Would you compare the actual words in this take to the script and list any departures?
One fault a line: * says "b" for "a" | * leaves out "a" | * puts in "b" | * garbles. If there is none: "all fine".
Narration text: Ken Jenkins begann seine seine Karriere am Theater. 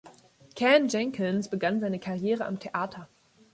* leaves out "seine"